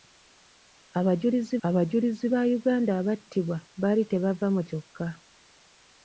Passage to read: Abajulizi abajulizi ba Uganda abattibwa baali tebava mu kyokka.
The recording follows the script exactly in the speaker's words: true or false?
true